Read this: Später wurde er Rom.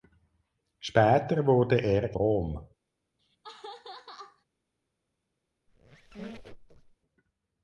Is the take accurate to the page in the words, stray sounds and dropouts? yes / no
no